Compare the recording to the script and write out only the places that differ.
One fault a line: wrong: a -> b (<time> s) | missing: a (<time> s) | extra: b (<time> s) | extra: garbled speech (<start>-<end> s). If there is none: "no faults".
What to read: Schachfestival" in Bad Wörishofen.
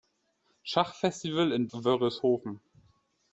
missing: Bad (1.7 s)